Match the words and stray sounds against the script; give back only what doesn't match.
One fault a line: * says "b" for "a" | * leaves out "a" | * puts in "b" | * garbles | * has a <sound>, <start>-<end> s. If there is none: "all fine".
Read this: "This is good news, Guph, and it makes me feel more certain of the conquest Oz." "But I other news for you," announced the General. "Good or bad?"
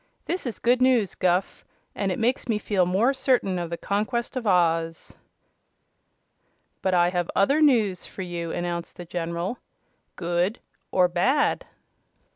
* puts in "of"
* puts in "have"